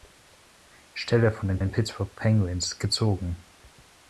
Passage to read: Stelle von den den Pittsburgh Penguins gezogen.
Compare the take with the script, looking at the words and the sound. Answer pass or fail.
pass